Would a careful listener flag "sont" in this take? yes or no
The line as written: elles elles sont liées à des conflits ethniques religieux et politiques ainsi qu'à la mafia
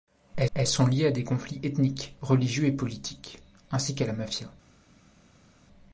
no